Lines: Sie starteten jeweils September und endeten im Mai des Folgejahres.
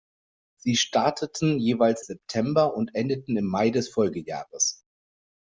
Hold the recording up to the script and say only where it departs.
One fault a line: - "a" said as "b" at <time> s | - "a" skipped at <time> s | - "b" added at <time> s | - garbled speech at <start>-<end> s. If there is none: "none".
none